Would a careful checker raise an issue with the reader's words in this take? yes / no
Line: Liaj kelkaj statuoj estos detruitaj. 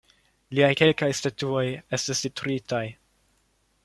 yes